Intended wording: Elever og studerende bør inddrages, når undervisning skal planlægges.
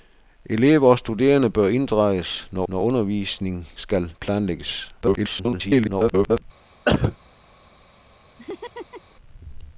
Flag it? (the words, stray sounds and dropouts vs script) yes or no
yes